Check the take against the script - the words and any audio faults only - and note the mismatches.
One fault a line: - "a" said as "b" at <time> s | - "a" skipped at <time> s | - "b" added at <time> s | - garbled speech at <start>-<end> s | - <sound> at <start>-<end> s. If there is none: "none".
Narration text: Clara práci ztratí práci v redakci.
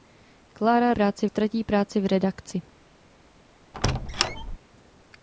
- squeak at 3.7-4.6 s